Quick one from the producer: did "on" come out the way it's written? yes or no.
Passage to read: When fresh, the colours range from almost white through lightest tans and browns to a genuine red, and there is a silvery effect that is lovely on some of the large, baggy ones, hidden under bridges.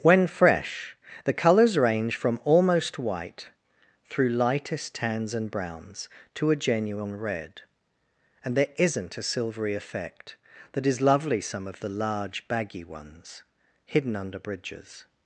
no